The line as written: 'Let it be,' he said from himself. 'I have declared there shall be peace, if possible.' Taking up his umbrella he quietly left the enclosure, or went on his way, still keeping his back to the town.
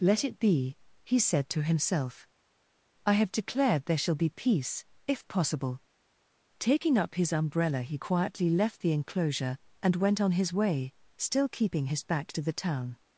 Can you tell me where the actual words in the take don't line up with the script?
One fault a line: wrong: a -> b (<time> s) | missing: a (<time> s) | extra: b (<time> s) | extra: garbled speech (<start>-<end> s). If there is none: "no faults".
wrong: from -> to (1.5 s)
wrong: or -> and (9.8 s)